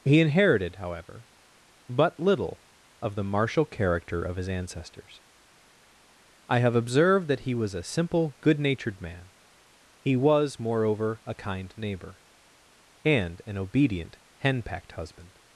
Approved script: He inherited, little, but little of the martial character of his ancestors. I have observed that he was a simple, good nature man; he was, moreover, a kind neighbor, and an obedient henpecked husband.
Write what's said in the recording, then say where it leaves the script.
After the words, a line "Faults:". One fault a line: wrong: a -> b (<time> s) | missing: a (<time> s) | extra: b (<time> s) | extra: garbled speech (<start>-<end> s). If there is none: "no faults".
He inherited, however, but little of the martial character of his ancestors. I have observed that he was a simple, good natured man; he was, moreover, a kind neighbor, and an obedient henpecked husband.
Faults:
wrong: little -> however (0.8 s)
wrong: nature -> natured (8.6 s)